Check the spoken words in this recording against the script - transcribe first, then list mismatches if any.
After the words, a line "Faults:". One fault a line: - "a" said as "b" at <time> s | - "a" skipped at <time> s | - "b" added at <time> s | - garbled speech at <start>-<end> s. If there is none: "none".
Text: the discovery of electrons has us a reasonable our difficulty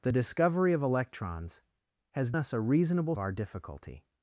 the discovery of electrons has us a reasonable our difficulty
Faults:
none